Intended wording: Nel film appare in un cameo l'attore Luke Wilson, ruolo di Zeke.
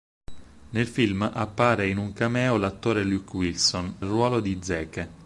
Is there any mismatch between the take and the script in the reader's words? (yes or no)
no